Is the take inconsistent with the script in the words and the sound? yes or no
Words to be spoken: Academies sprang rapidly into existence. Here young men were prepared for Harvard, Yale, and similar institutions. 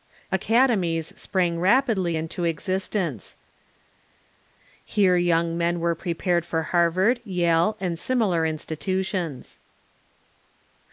no